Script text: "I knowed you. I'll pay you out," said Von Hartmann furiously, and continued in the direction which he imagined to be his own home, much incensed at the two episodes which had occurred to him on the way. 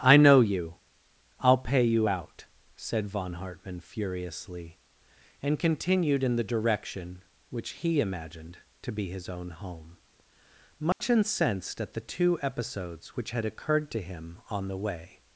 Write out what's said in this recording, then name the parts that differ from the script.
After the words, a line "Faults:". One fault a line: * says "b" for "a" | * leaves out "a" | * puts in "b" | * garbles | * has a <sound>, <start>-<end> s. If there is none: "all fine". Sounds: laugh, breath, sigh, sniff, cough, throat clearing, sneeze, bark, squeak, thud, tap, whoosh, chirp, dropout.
"I know you. I'll pay you out," said Von Hartmann furiously, and continued in the direction which he imagined to be his own home, much incensed at the two episodes which had occurred to him on the way.
Faults:
* says "know" for "knowed"
* has a dropout, 10.9-11.0 s